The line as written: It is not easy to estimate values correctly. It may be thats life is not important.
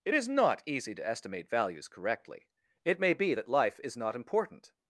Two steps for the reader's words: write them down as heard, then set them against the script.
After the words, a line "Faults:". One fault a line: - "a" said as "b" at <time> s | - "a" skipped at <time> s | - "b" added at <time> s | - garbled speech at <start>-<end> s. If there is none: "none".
It is not easy to estimate values correctly. It may be that life is not important.
Faults:
- "thats" said as "that" at 3.3 s